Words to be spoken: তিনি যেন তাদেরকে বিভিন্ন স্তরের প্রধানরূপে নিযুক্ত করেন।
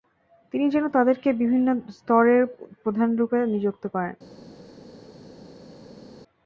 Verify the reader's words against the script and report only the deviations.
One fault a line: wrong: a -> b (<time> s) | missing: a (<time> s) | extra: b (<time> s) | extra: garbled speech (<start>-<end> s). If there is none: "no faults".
no faults